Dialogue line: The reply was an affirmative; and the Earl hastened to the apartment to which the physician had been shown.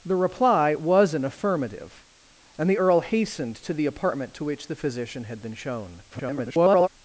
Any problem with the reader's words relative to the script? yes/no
yes